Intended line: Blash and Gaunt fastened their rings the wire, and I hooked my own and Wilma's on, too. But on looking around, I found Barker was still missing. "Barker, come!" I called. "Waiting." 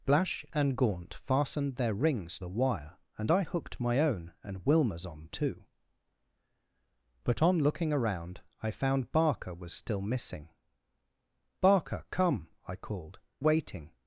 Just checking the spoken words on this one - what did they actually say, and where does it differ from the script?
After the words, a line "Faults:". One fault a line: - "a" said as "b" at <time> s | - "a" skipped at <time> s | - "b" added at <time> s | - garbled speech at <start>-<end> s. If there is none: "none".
Blash and Gaunt fastened their rings the wire, and I hooked my own and Wilma's on, too. But on looking around, I found Barker was still missing. "Barker, come!" I called. "Waiting."
Faults:
none